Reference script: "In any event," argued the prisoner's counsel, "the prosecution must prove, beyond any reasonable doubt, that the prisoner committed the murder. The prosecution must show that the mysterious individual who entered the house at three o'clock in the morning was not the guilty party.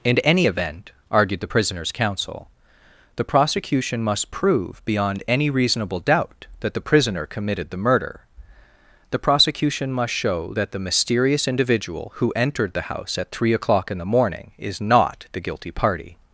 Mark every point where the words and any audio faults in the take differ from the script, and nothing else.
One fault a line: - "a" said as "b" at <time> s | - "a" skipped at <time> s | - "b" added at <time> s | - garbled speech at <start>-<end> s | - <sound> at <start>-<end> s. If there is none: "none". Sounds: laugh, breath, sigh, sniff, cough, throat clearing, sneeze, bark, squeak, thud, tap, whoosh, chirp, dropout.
- "was" said as "is" at 14.6 s